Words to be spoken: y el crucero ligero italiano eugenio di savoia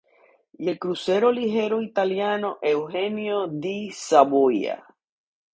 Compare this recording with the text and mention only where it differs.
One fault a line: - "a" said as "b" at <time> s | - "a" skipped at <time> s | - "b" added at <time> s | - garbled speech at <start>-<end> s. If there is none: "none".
none